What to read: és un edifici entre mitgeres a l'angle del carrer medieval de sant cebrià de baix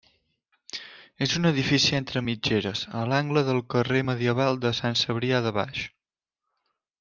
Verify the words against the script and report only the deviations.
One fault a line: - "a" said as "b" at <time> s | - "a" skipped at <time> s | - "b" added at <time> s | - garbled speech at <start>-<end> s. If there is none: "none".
none